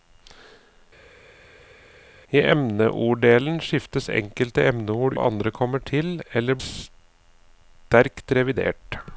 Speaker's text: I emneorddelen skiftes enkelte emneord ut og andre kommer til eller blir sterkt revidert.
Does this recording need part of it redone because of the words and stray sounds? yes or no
yes